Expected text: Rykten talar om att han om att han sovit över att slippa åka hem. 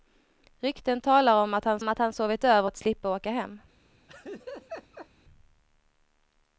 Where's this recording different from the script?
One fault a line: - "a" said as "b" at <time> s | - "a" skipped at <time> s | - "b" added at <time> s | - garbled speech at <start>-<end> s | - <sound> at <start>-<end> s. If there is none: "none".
- laugh at 4.1-5.1 s